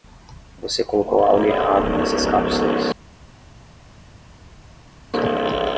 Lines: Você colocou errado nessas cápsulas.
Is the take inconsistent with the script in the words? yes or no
yes